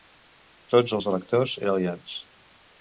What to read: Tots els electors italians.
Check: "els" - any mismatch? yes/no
no